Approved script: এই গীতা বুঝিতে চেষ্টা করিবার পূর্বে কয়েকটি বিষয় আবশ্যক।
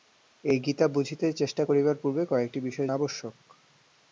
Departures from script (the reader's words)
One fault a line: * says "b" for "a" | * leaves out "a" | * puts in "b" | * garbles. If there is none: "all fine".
all fine